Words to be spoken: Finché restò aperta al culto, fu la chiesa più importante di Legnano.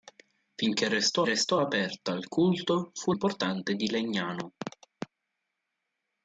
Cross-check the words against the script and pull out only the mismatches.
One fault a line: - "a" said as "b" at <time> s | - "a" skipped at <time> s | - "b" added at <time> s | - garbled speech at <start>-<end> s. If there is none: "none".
- "restò" added at 1.2 s
- "la chiesa più" skipped at 3.1 s